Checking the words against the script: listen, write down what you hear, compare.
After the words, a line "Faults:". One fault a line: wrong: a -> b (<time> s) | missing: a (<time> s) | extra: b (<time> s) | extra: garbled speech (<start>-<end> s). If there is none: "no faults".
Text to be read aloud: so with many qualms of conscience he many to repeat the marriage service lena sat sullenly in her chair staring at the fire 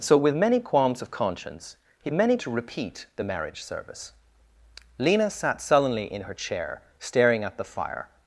so with many qualms of conscience he many to repeat the marriage service lena sat sullenly in her chair staring at the fire
Faults:
no faults